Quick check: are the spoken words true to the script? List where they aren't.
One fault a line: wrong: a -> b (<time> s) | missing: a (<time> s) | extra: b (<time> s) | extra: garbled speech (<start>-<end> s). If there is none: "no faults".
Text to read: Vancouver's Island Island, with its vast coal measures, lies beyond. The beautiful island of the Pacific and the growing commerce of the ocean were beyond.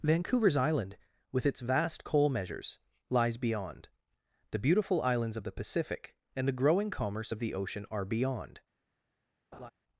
missing: Island (1.0 s)
wrong: island -> islands (5.0 s)
wrong: were -> are (7.9 s)